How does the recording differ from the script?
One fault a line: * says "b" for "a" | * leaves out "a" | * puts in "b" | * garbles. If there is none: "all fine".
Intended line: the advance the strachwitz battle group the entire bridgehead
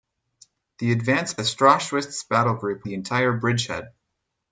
all fine